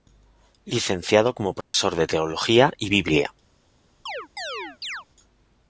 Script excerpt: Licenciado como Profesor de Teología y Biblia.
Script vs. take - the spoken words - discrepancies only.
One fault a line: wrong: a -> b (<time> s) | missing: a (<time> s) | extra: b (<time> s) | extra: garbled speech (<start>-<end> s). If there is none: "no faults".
no faults